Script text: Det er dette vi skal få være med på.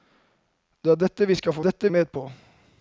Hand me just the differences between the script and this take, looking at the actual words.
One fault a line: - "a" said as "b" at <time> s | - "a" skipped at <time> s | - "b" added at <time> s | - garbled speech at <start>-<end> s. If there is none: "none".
- "være" said as "dette" at 1.6 s